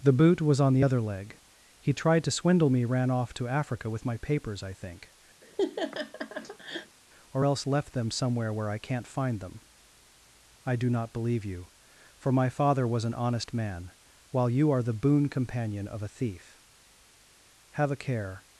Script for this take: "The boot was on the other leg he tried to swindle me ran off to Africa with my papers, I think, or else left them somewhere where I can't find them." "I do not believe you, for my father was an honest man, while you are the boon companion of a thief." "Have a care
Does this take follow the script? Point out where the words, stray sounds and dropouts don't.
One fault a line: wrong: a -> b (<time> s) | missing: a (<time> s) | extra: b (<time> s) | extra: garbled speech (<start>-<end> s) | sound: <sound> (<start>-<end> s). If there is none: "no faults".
sound: laugh (5.4-7.0 s)